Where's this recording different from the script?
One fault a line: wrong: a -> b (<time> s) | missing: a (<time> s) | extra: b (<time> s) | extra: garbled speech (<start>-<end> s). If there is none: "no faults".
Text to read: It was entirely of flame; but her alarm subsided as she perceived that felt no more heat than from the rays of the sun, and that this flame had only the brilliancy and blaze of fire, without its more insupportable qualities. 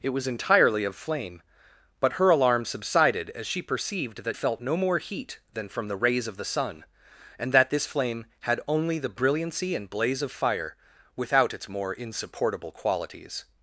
no faults